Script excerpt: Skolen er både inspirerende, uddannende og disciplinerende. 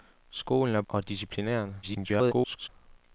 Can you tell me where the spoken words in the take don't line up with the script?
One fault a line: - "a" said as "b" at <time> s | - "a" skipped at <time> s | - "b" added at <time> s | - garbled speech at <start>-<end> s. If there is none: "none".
- "både inspirerende uddannende" skipped at 0.8 s
- garbled speech at 1.8-2.7 s